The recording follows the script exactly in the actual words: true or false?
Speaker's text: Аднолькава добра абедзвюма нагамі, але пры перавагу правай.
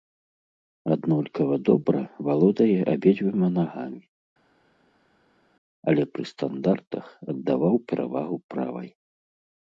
false